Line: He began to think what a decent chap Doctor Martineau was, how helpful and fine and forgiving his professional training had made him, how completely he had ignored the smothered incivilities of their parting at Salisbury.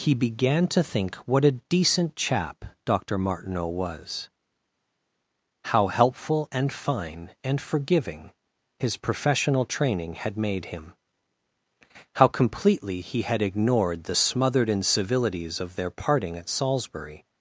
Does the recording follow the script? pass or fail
pass